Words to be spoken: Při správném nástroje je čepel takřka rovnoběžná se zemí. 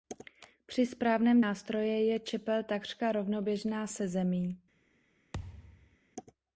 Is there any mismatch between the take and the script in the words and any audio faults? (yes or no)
yes